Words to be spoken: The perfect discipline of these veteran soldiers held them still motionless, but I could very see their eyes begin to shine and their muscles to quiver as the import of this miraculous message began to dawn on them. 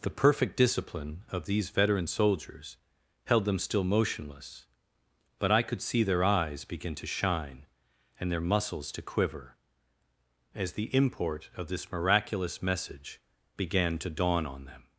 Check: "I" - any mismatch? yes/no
no